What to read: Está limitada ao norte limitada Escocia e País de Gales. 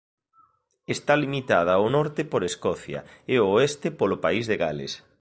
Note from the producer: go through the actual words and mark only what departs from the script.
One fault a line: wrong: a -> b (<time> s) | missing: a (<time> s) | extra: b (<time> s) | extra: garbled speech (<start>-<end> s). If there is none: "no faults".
wrong: limitada -> por (2.2 s)
extra: ao oeste polo (3.4 s)